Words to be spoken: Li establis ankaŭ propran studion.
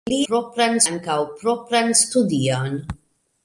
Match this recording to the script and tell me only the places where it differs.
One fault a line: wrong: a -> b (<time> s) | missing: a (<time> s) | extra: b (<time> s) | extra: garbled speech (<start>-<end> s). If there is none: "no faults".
wrong: establis -> propran (0.3 s)